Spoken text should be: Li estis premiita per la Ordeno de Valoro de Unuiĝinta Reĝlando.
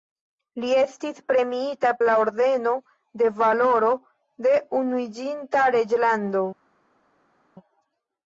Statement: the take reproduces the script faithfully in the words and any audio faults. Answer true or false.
false